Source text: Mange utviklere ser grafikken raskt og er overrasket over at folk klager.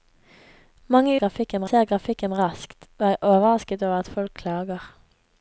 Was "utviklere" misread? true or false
true